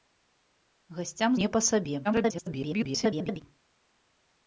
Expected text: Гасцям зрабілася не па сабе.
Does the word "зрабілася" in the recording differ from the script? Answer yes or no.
yes